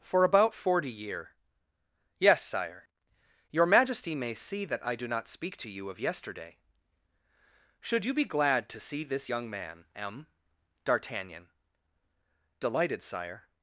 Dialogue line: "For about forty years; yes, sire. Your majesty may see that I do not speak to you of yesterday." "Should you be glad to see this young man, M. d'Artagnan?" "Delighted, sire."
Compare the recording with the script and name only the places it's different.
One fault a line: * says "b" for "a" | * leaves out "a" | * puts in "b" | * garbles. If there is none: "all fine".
* says "year" for "years"